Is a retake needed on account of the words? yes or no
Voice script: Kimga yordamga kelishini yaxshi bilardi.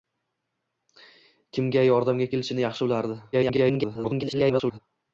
yes